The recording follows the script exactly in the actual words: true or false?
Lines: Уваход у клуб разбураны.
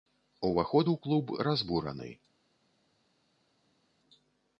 true